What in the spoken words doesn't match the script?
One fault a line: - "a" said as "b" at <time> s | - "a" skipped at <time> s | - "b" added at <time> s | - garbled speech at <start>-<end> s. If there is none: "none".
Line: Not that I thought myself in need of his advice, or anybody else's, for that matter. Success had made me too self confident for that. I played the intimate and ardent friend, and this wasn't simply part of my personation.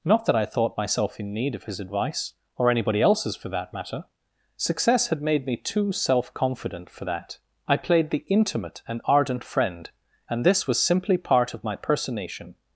- "wasn't" said as "was" at 10.7 s